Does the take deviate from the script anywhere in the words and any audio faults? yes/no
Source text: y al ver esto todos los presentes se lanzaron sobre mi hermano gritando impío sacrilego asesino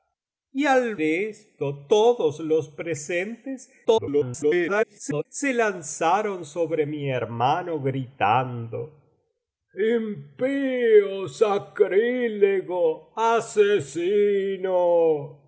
yes